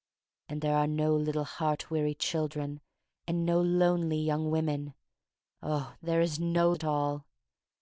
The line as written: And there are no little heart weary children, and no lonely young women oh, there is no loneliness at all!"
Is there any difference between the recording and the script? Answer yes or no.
yes